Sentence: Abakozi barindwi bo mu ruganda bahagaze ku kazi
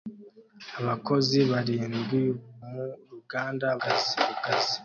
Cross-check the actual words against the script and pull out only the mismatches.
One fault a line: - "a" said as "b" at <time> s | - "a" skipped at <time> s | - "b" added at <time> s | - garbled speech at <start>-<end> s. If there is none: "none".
- "bo" skipped at 2.2 s
- "bahagaze" said as "kazi" at 3.8 s